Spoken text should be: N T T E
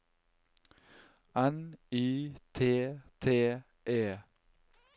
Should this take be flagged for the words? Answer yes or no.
yes